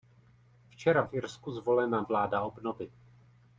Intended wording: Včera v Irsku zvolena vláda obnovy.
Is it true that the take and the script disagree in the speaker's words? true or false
false